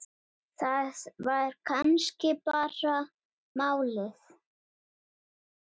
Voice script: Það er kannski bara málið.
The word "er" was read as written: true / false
false